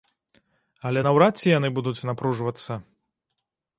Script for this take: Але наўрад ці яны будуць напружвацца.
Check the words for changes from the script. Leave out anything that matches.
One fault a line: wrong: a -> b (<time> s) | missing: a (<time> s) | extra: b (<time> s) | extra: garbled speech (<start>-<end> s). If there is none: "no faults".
no faults